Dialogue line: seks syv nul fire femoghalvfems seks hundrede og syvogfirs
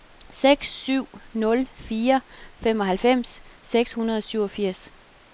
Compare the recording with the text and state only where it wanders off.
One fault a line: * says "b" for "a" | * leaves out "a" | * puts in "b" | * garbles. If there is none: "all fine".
all fine